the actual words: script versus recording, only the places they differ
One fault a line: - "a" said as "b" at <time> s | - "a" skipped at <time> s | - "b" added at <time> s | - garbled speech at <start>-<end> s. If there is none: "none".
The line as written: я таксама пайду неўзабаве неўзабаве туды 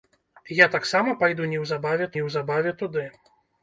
none